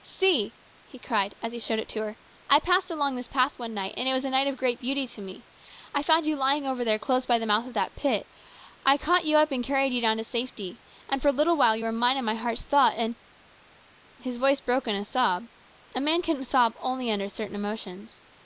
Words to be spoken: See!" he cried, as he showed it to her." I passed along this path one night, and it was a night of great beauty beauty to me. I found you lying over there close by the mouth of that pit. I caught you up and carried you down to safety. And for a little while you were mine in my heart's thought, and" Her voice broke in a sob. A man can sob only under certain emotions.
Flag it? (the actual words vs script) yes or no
yes